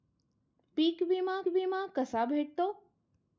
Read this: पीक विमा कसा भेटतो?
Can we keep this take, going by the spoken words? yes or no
no